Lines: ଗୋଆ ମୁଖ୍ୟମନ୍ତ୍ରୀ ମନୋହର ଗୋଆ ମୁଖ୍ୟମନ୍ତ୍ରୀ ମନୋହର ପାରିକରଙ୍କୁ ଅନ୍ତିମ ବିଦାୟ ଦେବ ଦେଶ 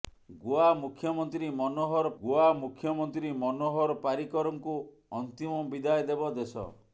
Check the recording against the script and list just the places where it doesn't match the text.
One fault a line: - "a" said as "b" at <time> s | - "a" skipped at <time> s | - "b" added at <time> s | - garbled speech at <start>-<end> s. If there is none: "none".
none